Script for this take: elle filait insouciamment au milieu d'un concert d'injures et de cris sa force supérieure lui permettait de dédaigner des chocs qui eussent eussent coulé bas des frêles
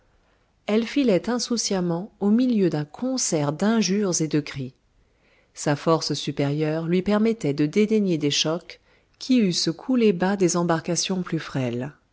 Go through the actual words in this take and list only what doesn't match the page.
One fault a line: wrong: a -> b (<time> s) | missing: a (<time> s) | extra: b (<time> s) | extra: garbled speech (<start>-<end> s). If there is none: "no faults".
missing: eussent (9.7 s)
extra: embarcations plus (10.6 s)